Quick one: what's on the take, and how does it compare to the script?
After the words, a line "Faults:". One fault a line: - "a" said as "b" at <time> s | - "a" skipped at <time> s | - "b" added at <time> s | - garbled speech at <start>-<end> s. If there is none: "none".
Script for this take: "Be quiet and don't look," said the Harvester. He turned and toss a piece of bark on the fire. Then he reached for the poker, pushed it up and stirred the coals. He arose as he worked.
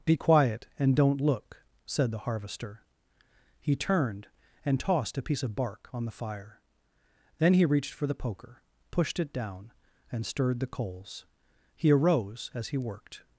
"Be quiet and don't look," said the Harvester. He turned and tossed a piece of bark on the fire. Then he reached for the poker, pushed it down and stirred the coals. He arose as he worked.
Faults:
- "toss" said as "tossed" at 4.8 s
- "up" said as "down" at 9.3 s